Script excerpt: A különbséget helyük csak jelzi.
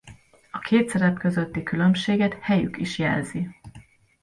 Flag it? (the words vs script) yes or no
yes